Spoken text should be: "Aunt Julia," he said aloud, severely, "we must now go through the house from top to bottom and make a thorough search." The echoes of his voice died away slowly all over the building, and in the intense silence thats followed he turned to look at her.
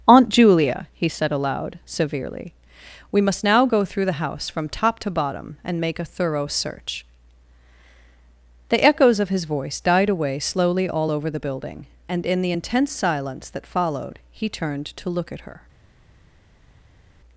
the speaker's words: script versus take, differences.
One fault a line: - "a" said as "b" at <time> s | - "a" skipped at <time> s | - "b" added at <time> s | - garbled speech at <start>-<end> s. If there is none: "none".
- "thats" said as "that" at 13.5 s